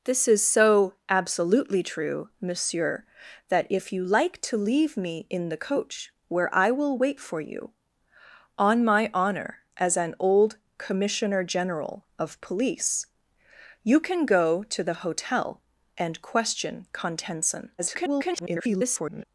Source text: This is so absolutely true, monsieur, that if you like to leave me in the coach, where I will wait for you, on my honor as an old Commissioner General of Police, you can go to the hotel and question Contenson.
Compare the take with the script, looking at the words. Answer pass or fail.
fail